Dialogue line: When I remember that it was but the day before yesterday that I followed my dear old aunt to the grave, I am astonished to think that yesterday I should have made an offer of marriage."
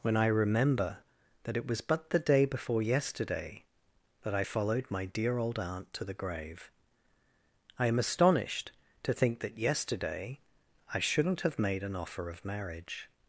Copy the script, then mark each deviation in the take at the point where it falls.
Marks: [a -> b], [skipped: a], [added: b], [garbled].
When I remember that it was but the day before yesterday that I followed my dear old aunt to the grave, I am astonished to think that yesterday I [should -> shouldn't] have made an offer of marriage."